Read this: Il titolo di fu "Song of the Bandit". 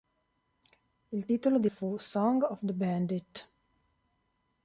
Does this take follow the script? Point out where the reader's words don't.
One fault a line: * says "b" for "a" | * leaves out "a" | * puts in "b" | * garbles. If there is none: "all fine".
all fine